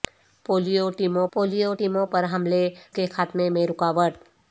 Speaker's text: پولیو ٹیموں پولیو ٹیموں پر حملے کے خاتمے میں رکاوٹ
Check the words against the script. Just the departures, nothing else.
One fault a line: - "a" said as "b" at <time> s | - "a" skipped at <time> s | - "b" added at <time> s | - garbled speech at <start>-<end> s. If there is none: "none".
none